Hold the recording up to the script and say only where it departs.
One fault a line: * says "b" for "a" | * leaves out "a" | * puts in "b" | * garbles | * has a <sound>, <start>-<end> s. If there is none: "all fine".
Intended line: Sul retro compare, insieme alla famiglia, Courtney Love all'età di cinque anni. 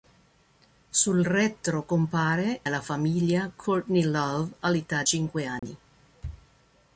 * leaves out "insieme"
* leaves out "di"
* has a dropout, 5.6-5.6 s